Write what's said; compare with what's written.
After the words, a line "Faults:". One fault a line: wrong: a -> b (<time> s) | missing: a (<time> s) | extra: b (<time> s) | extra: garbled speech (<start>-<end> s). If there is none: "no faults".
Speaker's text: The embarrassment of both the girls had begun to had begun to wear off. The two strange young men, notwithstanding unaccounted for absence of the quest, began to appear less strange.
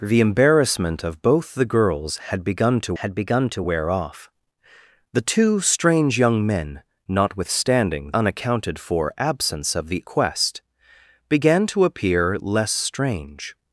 The embarrassment of both the girls had begun to had begun to wear off. The two strange young men, notwithstanding unaccounted for absence of the quest, began to appear less strange.
Faults:
no faults